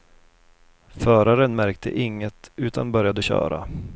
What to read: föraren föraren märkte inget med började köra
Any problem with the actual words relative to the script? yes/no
yes